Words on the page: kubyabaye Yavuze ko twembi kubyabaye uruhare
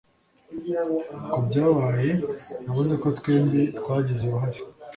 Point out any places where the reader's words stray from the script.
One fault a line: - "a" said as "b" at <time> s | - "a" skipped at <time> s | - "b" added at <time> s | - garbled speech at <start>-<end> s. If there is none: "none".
- "kubyabaye" said as "twagize" at 3.8 s